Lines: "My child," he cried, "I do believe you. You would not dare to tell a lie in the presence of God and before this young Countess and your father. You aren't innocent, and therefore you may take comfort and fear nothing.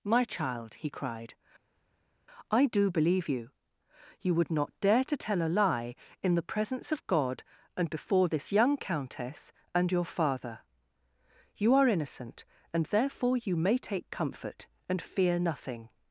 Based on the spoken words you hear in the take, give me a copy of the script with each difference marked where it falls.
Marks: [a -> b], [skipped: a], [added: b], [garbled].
"My child," he cried, "I do believe you. You would not dare to tell a lie in the presence of God and before this young Countess and your father. You [aren't -> are] innocent, and therefore you may take comfort and fear nothing.